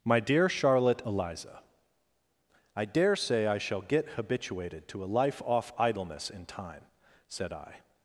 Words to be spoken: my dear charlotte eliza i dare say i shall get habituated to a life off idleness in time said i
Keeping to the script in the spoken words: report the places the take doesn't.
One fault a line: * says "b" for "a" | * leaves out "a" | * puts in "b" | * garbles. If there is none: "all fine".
all fine